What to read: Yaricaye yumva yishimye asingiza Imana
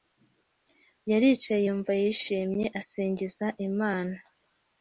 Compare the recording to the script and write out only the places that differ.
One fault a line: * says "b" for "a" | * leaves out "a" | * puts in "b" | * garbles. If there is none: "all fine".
all fine